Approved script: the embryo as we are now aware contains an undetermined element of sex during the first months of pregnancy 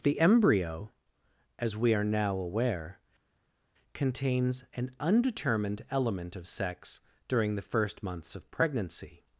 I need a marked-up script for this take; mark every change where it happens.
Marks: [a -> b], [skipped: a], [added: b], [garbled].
the embryo as we are now aware contains an undetermined element of sex during the first months of pregnancy